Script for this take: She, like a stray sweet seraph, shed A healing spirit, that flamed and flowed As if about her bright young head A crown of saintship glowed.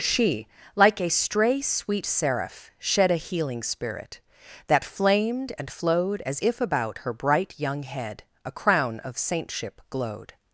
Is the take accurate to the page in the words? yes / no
yes